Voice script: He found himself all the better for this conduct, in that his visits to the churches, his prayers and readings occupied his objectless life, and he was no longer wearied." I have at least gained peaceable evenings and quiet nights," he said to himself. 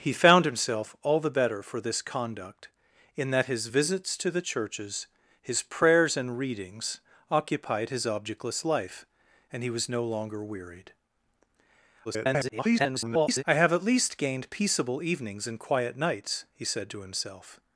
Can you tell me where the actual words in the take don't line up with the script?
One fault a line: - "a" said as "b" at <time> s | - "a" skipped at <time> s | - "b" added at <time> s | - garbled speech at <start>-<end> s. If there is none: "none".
- garbled speech at 12.0-13.4 s